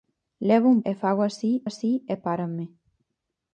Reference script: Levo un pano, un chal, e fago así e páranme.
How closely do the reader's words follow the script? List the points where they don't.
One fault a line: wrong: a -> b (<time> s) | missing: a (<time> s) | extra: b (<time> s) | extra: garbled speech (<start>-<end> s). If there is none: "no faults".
missing: pano un chal (0.8 s)
extra: así (1.6 s)